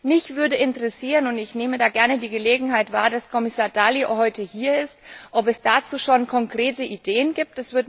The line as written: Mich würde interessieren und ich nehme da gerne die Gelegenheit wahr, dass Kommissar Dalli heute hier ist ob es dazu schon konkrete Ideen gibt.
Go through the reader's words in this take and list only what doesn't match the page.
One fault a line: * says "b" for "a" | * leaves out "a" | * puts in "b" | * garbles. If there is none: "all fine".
all fine